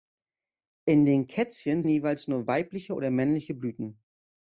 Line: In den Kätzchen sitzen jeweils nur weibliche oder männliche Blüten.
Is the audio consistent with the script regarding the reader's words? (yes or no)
no